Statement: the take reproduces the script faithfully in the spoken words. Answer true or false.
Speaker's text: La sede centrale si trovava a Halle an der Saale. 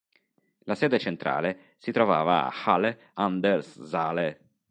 true